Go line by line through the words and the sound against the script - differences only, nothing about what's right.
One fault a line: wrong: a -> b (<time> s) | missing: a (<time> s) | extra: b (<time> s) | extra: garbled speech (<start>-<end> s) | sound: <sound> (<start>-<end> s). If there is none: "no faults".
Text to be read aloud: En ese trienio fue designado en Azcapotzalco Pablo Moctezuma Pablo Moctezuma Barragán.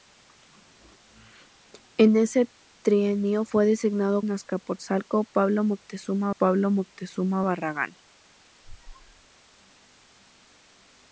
sound: squeak (8.6-9.3 s)